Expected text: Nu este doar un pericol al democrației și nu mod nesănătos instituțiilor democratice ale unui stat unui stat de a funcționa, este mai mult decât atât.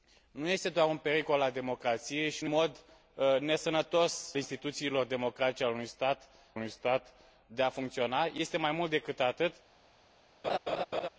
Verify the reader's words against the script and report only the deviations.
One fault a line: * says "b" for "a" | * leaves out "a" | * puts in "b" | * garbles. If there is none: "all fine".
all fine